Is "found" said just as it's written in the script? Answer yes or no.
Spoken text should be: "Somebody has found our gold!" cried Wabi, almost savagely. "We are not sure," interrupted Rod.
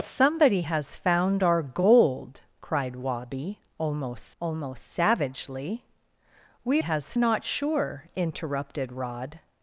yes